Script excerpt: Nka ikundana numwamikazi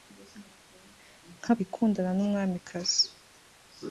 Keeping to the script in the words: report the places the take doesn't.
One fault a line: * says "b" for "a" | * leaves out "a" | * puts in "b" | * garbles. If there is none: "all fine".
all fine